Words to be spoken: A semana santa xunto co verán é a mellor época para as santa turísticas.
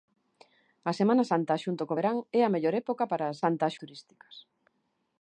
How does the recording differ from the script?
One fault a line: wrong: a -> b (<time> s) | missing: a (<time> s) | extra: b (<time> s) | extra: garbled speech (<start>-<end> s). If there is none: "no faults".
no faults